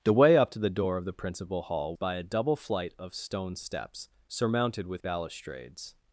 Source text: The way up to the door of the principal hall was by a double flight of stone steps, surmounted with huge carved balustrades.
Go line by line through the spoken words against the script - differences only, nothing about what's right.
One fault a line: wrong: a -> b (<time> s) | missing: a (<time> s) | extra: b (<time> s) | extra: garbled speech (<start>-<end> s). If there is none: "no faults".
missing: was (1.9 s)
missing: huge carved (5.0 s)